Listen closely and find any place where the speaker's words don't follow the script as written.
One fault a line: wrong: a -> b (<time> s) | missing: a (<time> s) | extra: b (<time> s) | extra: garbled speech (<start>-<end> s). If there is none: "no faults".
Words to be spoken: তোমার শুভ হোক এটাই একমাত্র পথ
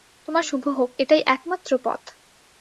no faults